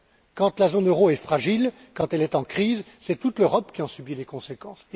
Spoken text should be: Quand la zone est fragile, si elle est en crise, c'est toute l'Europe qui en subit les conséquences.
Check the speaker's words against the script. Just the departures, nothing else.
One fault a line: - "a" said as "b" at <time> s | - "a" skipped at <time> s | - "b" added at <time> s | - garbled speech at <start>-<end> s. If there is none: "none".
- "euro" added at 0.9 s
- "si" said as "quand" at 1.9 s